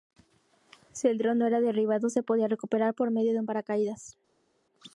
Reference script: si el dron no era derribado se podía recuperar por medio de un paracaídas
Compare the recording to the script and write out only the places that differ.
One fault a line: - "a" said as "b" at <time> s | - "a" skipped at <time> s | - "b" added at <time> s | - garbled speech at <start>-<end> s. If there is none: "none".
none